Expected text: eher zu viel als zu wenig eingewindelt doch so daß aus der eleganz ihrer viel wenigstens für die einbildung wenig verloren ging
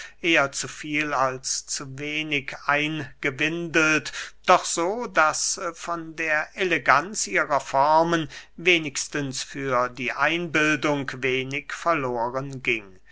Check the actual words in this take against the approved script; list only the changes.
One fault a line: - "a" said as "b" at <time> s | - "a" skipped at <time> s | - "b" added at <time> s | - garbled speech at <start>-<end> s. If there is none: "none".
- "aus" said as "von" at 5.8 s
- "viel" said as "formen" at 7.6 s